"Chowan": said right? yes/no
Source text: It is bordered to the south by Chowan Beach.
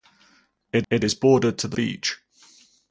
no